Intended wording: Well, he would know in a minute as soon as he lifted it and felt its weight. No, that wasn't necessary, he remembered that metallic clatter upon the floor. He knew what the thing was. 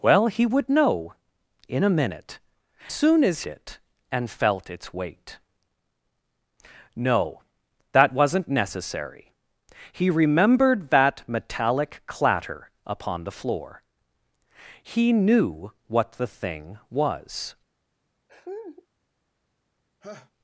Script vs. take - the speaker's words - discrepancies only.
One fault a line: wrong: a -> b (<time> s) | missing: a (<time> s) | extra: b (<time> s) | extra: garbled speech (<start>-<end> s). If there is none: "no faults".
missing: as (2.4 s)
missing: he lifted (3.4 s)